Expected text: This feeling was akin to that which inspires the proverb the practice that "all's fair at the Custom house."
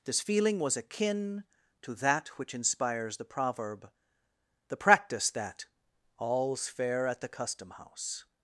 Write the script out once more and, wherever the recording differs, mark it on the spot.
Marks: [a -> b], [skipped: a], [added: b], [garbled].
This feeling was akin to that which inspires the proverb the practice that "all's fair at the Custom house."